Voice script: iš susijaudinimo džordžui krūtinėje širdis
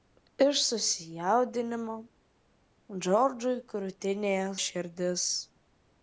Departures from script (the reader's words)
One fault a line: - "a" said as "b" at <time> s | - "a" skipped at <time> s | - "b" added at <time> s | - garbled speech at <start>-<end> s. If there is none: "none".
none